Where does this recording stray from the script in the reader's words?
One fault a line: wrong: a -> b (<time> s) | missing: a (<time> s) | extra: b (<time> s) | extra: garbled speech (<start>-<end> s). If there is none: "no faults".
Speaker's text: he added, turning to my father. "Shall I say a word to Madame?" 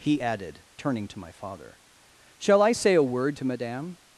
no faults